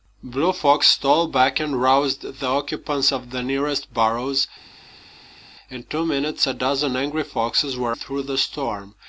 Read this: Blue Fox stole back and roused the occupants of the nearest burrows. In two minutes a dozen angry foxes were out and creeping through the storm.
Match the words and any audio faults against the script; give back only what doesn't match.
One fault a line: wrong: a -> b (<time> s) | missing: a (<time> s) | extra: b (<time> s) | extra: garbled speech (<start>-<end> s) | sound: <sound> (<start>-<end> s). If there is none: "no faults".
missing: out and creeping (8.0 s)